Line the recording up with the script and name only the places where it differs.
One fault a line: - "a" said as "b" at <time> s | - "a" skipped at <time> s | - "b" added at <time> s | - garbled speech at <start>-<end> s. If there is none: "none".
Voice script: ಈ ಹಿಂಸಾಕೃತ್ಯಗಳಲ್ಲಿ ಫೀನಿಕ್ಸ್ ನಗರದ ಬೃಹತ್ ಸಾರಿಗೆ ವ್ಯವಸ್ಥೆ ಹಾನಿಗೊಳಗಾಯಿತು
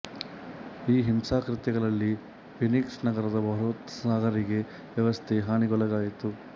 none